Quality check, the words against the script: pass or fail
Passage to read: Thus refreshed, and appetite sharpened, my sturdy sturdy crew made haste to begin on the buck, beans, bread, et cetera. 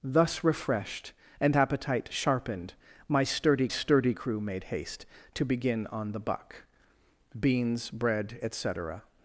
pass